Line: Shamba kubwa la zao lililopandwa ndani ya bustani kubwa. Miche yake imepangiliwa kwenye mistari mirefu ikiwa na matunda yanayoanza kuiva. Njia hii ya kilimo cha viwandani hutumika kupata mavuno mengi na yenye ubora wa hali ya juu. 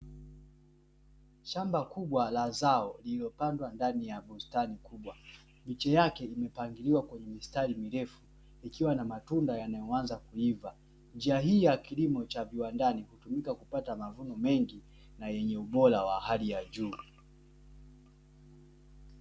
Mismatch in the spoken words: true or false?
false